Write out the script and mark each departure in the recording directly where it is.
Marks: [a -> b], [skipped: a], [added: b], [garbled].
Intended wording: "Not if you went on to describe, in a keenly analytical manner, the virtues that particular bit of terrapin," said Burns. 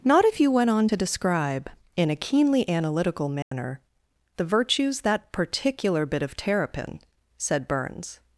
"Not if you went on to describe, in a keenly analytical manner, the virtues that particular bit of terrapin," said Burns.